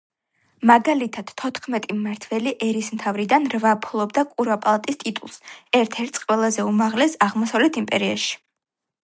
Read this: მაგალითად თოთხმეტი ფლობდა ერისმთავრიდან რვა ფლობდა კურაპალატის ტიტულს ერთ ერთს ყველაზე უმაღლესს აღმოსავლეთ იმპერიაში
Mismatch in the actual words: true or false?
true